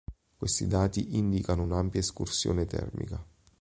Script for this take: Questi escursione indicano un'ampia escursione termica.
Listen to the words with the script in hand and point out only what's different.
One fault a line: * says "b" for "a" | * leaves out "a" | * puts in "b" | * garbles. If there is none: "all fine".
* says "dati" for "escursione"